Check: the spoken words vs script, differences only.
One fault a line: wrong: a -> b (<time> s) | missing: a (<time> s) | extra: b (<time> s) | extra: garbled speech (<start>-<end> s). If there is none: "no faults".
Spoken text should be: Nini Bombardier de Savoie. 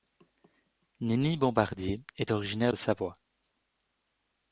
extra: est originaire (2.2 s)